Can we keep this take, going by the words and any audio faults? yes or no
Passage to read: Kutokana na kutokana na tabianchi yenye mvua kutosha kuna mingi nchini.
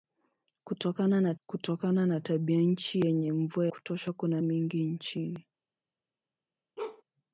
no